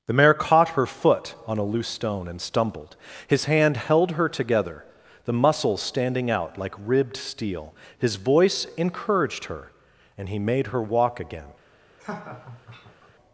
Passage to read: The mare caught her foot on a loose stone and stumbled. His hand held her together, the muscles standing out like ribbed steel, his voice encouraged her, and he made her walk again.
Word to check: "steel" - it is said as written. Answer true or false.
true